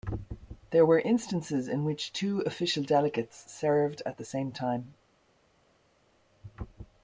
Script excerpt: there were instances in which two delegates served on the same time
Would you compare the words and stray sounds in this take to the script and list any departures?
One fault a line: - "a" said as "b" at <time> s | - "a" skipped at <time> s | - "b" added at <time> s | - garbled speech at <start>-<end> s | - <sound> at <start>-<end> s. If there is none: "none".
- "official" added at 2.4 s
- "on" said as "at" at 4.0 s